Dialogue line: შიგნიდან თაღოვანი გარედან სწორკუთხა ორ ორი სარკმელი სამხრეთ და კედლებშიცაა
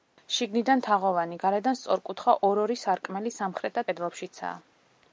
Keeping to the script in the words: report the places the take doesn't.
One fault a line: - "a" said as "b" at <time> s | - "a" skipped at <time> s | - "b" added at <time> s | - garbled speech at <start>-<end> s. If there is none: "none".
none